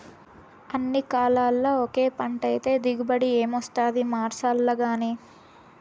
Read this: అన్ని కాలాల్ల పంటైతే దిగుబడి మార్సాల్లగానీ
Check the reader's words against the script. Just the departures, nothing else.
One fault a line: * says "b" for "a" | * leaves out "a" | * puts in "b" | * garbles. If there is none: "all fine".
* puts in "ఒకే"
* puts in "ఏమొస్తాది"